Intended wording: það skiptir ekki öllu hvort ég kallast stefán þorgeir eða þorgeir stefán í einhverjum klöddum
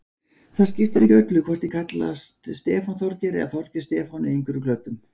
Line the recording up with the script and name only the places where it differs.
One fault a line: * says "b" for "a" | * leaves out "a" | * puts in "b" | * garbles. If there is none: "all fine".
all fine